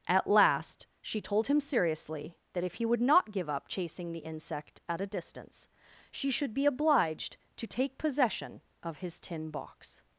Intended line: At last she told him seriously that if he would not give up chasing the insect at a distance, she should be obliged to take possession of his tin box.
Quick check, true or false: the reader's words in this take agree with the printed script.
true